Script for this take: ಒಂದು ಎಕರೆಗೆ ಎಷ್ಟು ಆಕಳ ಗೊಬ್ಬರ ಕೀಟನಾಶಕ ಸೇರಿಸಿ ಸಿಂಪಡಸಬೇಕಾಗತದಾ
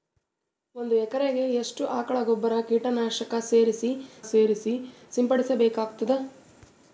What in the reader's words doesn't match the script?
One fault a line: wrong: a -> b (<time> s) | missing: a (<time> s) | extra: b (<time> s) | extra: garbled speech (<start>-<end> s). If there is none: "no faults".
extra: ಸೇರಿಸಿ (4.3 s)